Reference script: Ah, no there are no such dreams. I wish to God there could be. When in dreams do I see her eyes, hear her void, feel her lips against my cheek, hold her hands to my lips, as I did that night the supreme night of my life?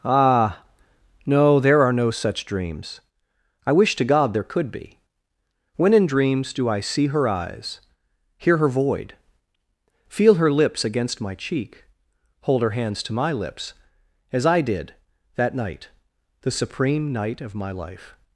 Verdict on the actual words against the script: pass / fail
pass